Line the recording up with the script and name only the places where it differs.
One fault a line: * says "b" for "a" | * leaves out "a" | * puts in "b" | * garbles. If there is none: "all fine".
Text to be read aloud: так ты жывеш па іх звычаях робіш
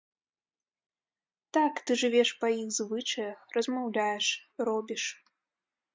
* puts in "размаўляеш"